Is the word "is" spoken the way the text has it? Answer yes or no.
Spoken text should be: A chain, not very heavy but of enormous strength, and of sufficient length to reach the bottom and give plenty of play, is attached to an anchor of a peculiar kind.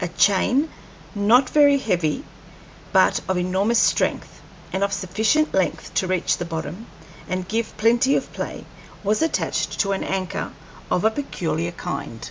no